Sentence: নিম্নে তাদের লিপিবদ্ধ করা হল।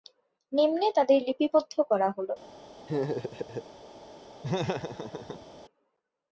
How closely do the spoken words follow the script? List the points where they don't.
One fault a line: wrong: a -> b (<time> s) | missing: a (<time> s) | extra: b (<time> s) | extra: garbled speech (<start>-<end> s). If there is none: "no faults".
no faults